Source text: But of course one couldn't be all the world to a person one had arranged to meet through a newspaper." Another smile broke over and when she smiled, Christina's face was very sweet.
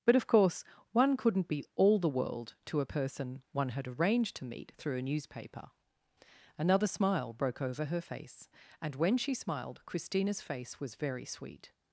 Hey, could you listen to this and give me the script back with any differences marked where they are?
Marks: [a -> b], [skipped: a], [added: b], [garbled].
But of course one couldn't be all the world to a person one had arranged to meet through a newspaper." Another smile broke over [added: her face] and when she smiled, Christina's face was very sweet.